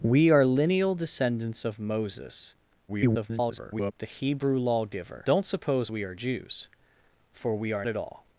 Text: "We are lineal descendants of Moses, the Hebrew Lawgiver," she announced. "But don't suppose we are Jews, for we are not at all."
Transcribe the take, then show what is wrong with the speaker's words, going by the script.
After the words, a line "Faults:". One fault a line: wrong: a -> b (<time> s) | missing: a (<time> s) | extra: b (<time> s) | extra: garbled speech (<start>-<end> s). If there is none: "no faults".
"We are lineal descendants of Moses, [garbled] the Hebrew Lawgiver," don't suppose we are Jews, for we are at all."
Faults:
extra: garbled speech (2.9-3.9 s)
missing: she announced But (5.3 s)
missing: not (7.9 s)